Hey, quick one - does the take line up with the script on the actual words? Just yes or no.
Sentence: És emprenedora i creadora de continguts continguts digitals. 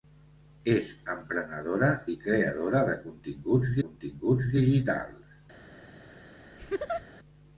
yes